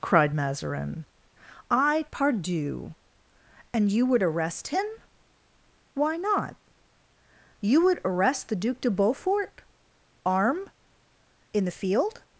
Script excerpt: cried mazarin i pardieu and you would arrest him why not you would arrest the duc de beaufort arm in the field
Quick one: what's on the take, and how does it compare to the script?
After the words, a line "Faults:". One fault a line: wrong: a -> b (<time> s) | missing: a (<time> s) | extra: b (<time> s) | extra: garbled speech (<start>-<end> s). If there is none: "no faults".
cried mazarin i pardieu and you would arrest him why not you would arrest the duc de beaufort arm in the field
Faults:
no faults